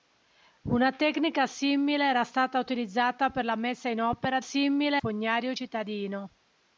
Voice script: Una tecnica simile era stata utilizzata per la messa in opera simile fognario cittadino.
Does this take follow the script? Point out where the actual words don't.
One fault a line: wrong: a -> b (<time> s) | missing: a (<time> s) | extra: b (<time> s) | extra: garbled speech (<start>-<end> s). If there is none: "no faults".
no faults